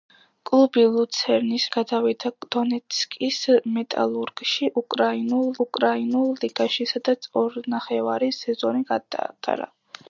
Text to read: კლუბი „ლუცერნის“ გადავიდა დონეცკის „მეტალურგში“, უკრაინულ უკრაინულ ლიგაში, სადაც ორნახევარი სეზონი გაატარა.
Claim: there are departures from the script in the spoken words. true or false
false